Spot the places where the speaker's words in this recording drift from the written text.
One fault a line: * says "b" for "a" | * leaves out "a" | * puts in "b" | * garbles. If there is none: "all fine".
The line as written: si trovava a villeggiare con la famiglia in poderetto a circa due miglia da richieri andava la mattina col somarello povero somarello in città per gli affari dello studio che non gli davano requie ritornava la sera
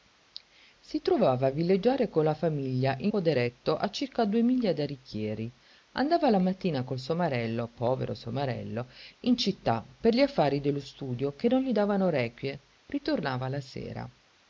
all fine